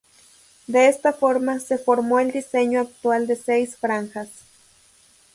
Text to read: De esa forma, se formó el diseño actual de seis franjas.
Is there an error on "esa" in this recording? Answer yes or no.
yes